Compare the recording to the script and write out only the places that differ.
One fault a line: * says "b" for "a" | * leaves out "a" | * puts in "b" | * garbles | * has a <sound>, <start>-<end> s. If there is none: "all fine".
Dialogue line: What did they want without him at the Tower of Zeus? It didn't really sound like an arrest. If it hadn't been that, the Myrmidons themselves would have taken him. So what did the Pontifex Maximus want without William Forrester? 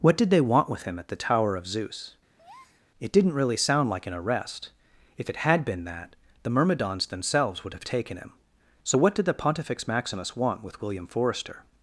* says "with" for "without"
* has a breath, 2.4-2.9 s
* says "had" for "hadn't"
* says "with" for "without"